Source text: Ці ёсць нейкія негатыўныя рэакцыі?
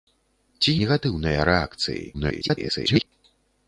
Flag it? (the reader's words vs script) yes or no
yes